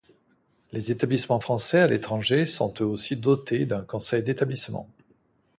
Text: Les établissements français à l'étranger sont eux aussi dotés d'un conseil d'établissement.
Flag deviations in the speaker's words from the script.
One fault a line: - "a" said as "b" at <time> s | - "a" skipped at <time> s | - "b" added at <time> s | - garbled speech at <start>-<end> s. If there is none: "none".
none